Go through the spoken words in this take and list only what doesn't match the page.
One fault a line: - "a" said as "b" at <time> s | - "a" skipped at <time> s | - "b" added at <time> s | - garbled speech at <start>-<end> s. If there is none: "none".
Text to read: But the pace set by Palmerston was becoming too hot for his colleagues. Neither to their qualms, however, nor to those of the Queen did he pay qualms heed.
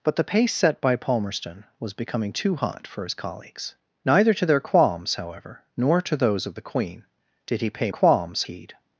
none